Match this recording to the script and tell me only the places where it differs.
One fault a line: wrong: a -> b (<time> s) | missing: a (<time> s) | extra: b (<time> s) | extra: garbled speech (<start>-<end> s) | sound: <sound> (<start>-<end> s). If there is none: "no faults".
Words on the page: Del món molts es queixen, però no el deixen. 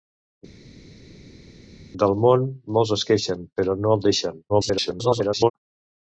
extra: garbled speech (4.5-5.5 s)